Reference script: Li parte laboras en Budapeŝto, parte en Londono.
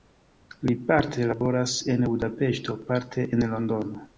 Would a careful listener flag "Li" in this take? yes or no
no